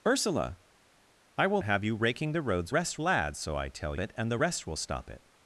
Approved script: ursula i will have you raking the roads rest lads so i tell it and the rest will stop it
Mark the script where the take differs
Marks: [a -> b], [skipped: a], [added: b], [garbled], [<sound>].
ursula i will have you raking the roads rest lads so i tell it and the rest will stop it